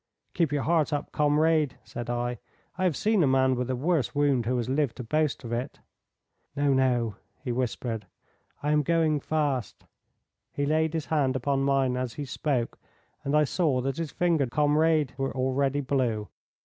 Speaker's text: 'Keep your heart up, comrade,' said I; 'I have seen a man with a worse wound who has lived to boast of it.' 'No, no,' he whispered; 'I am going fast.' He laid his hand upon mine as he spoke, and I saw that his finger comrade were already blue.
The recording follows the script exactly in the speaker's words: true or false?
true